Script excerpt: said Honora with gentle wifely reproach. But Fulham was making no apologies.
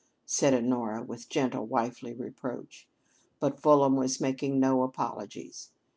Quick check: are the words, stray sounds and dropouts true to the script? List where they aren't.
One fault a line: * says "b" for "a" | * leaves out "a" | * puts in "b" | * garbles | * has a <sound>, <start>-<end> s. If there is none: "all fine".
all fine